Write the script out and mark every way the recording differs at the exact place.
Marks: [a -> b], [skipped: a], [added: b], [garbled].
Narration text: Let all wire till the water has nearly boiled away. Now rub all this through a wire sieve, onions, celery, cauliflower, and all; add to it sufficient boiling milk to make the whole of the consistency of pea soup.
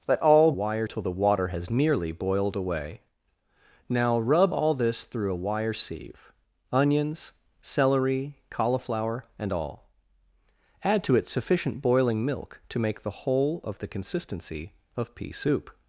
Let all wire till the water has nearly boiled away. Now rub all this through a wire sieve, onions, celery, cauliflower, and all; add to it sufficient boiling milk to make the whole of the consistency of pea soup.